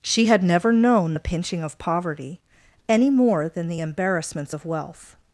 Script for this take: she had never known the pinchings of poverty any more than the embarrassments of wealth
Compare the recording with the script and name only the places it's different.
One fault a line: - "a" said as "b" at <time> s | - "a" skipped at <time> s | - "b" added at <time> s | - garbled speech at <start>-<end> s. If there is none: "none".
- "pinchings" said as "pinching" at 1.2 s